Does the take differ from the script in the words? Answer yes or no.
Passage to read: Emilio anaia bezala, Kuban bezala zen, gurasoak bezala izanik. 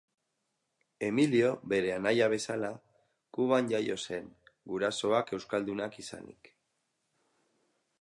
yes